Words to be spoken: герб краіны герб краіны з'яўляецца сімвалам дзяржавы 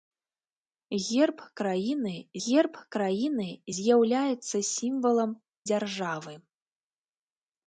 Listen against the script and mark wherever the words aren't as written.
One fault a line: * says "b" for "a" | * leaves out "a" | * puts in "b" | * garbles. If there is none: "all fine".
all fine